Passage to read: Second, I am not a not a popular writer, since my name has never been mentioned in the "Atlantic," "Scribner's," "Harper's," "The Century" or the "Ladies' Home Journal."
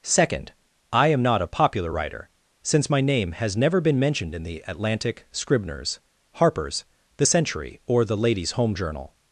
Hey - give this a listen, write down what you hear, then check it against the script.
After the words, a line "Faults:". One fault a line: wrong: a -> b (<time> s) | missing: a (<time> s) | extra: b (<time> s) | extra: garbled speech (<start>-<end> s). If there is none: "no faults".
Second, I am not a popular writer, since my name has never been mentioned in the "Atlantic," "Scribner's," "Harper's," "The Century" or the "Ladies' Home Journal."
Faults:
missing: not a (1.5 s)